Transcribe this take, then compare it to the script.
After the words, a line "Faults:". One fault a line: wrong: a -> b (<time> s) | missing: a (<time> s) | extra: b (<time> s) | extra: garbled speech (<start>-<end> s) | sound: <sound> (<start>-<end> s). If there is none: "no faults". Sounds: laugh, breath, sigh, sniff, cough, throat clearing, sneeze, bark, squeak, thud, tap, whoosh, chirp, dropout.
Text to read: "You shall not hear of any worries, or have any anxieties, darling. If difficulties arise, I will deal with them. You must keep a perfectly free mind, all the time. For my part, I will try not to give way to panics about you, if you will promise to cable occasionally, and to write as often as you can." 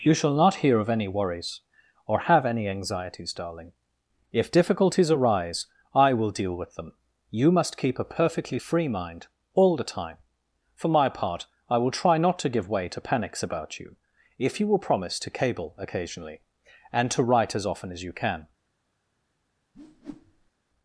"You shall not hear of any worries, or have any anxieties, darling. If difficulties arise, I will deal with them. You must keep a perfectly free mind, all the time. For my part, I will try not to give way to panics about you, if you will promise to cable occasionally, and to write as often as you can."
Faults:
sound: whoosh (19.7-20.5 s)